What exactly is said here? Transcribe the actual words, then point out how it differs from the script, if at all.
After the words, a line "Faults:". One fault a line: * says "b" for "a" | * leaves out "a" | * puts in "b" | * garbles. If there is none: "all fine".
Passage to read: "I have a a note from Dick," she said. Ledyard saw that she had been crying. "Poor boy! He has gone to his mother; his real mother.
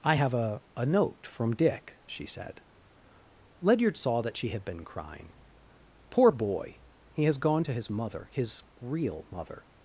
"I have a a note from Dick," she said. Ledyard saw that she had been crying. "Poor boy! He has gone to his mother; his real mother.
Faults:
all fine